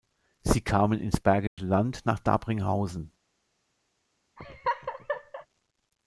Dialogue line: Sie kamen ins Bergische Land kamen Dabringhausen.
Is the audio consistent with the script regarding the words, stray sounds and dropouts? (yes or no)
no